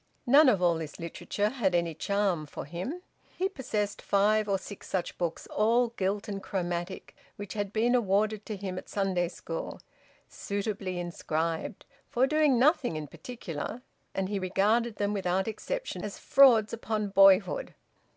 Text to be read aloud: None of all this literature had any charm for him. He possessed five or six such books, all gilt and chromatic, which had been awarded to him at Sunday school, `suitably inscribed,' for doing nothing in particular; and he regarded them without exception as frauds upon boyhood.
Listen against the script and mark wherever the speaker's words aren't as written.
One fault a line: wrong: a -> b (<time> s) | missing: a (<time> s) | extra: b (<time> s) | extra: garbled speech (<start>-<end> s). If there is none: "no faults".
no faults